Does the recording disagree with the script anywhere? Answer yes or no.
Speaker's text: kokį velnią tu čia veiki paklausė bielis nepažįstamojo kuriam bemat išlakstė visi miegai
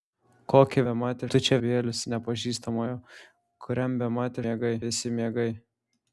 yes